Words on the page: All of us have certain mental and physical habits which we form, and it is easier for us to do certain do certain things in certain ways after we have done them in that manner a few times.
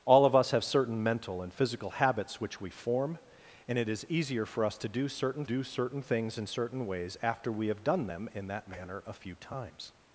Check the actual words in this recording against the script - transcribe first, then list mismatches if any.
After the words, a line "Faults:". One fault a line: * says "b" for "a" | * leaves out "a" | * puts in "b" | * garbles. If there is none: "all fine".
All of us have certain mental and physical habits which we form, and it is easier for us to do certain do certain things in certain ways after we have done them in that manner a few times.
Faults:
all fine